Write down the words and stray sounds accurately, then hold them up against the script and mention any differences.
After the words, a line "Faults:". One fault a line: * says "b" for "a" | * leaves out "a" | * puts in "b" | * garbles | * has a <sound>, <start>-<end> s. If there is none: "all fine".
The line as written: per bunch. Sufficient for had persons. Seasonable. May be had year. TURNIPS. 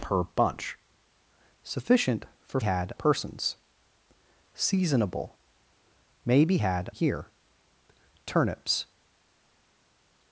per bunch. Sufficient for had persons. Seasonable. May be had year. TURNIPS.
Faults:
all fine